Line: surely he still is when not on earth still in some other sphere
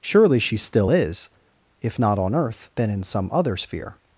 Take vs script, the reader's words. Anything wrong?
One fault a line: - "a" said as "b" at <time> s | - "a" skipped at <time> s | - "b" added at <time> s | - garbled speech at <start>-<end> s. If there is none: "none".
- "he" said as "she" at 0.4 s
- "when" said as "if" at 1.8 s
- "still" said as "then" at 2.8 s